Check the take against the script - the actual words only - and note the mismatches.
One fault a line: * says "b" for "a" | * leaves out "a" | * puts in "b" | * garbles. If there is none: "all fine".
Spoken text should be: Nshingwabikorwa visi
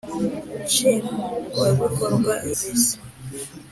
all fine